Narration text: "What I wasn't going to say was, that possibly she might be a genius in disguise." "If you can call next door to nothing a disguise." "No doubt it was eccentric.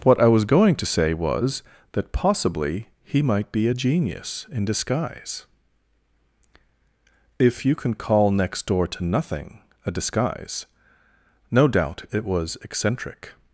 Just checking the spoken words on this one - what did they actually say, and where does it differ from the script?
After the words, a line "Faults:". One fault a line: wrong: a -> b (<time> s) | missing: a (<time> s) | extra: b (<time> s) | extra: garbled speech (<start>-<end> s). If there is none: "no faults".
"What I was going to say was, that possibly he might be a genius in disguise." "If you can call next door to nothing a disguise." "No doubt it was eccentric.
Faults:
wrong: wasn't -> was (0.3 s)
wrong: she -> he (3.0 s)